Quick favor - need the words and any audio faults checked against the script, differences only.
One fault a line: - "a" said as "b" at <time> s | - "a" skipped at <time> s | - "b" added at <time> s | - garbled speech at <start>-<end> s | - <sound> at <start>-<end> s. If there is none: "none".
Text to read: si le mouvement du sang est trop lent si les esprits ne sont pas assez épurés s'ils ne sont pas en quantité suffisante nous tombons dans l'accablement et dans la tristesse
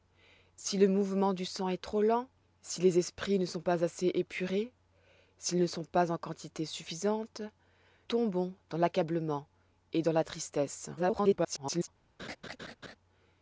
- "nous" skipped at 7.4 s
- garbled speech at 11.0-11.9 s
- laugh at 12.2-13.0 s